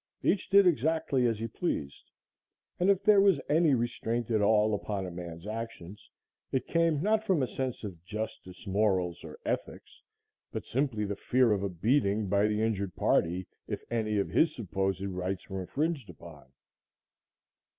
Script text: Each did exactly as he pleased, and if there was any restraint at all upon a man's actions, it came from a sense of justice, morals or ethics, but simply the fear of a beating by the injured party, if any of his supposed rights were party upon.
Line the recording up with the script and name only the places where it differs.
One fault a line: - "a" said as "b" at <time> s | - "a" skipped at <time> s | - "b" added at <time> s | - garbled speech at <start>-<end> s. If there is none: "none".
- "not" added at 7.0 s
- "party" said as "infringed" at 15.6 s